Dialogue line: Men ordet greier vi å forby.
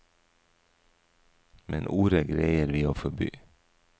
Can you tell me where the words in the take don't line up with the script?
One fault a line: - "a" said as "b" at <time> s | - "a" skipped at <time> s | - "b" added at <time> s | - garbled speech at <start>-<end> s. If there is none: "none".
none